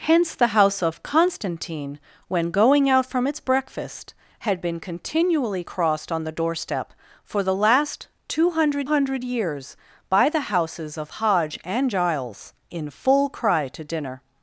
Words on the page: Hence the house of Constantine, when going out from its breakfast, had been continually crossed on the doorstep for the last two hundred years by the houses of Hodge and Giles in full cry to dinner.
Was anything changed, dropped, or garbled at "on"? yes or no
no